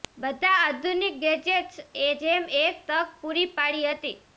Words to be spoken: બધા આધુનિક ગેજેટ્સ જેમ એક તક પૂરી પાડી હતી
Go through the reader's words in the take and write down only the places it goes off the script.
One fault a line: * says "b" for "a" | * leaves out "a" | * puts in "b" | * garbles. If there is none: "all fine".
all fine